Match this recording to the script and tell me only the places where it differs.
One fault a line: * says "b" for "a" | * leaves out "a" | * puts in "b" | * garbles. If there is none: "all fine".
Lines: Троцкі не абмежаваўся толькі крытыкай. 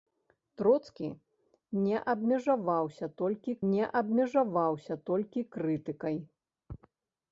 * puts in "не абмежаваўся толькі"